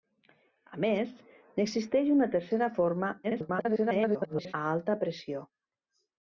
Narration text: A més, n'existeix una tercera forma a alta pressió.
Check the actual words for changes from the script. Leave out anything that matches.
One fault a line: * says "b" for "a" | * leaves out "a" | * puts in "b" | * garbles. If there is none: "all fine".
* garbles